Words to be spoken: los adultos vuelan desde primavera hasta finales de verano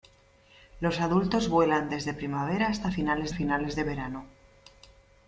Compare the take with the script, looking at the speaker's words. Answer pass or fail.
fail